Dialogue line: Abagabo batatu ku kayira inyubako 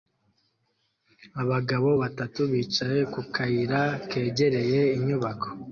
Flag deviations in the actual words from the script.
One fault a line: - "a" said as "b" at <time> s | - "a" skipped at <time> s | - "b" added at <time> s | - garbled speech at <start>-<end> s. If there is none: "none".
- "bicaye" added at 2.5 s
- "kegereye" added at 4.1 s